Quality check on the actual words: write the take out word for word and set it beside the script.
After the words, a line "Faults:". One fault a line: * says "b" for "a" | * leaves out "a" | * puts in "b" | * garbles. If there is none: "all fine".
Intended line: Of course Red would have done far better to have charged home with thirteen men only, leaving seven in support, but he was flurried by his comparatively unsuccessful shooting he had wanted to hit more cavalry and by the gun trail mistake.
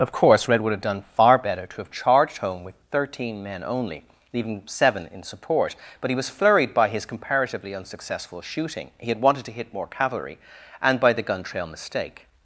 Of course Red would have done far better to have charged home with thirteen men only, leaving seven in support, but he was flurried by his comparatively unsuccessful shooting he had wanted to hit more cavalry and by the gun trail mistake.
Faults:
all fine